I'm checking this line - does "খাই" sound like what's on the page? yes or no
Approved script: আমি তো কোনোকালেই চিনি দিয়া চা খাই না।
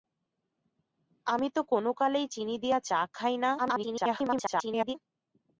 yes